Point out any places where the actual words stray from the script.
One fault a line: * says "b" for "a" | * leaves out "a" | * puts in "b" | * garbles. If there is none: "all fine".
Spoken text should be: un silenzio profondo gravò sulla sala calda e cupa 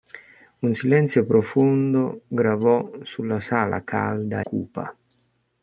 * leaves out "e"